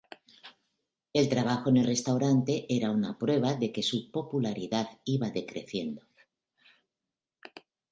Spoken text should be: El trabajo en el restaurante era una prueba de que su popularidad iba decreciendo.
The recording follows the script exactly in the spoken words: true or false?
true